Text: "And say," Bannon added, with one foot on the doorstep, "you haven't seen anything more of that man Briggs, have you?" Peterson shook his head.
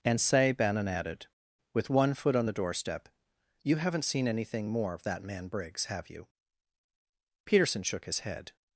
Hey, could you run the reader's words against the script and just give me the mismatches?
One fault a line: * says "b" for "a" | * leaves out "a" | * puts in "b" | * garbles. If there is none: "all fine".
all fine